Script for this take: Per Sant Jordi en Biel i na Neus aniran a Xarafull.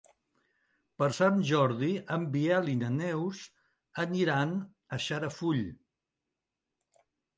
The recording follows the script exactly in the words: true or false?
true